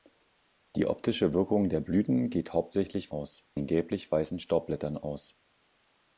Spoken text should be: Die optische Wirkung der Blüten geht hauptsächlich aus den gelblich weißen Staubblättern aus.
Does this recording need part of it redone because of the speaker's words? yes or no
no